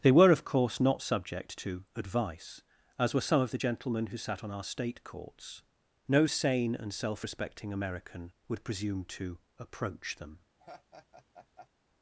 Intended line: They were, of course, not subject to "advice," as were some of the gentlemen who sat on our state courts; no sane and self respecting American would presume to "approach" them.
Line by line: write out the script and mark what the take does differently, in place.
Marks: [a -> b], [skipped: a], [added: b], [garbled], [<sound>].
They were, of course, not subject to "advice," as were some of the gentlemen who sat on our state courts; no sane and self respecting American would presume to "approach" them. [laugh]